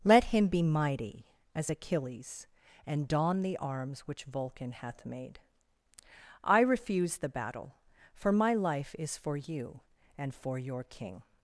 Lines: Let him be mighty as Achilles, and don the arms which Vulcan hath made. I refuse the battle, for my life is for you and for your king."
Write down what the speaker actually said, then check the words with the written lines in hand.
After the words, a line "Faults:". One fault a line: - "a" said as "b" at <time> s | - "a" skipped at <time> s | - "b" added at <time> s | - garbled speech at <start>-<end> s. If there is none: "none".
Let him be mighty as Achilles, and don the arms which Vulcan hath made. I refuse the battle, for my life is for you and for your king."
Faults:
none